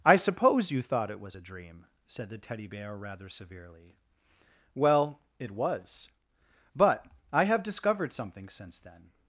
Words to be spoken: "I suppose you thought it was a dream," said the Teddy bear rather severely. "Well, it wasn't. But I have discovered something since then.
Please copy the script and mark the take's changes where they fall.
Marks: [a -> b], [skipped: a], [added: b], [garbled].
"I suppose you thought it was a dream," said the Teddy bear rather severely. "Well, it [wasn't. -> was] But I have discovered something since then.